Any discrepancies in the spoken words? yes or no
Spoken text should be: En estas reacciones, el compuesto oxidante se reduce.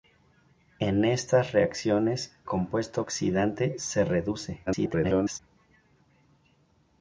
yes